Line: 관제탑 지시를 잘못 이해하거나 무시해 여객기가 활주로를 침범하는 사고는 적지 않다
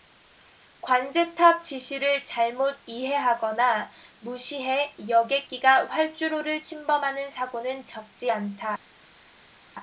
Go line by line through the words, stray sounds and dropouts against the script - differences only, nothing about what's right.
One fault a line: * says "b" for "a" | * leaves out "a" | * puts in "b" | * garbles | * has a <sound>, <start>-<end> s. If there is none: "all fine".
all fine